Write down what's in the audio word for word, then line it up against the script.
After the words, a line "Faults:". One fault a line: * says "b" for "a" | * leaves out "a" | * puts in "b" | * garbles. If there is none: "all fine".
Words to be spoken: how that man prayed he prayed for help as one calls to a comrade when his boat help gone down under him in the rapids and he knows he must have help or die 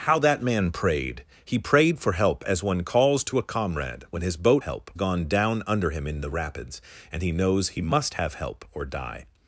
how that man prayed he prayed for help as one calls to a comrade when his boat help gone down under him in the rapids and he knows he must have help or die
Faults:
all fine